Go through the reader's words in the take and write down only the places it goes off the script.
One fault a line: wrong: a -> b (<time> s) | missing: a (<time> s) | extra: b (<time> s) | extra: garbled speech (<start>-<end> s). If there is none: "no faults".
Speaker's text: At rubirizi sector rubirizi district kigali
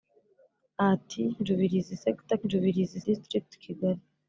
no faults